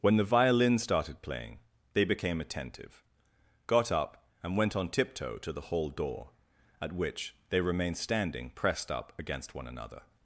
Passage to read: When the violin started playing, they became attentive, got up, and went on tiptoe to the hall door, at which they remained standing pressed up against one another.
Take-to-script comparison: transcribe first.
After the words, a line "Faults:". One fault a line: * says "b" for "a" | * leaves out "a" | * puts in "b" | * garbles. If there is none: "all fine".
When the violin started playing, they became attentive, got up, and went on tiptoe to the hall door, at which they remained standing pressed up against one another.
Faults:
all fine